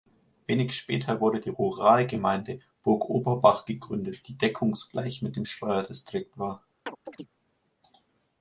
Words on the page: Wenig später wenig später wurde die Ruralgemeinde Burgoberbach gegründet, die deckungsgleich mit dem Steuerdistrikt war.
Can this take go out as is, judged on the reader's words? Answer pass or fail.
fail